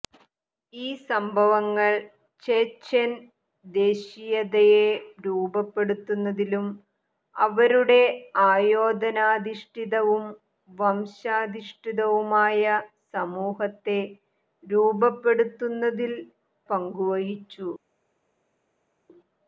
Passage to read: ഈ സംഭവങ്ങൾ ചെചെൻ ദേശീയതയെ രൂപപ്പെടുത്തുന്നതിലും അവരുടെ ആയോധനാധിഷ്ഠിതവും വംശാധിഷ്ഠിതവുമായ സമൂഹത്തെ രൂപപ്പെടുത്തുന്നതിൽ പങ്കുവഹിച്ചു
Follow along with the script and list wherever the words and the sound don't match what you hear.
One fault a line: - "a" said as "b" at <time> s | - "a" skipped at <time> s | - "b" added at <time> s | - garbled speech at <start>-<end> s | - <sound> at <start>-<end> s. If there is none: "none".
none